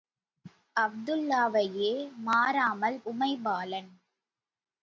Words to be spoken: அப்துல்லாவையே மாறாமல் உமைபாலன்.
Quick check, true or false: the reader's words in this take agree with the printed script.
true